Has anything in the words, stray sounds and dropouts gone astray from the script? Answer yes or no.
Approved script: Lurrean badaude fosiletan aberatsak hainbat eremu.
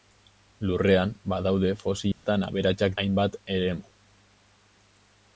yes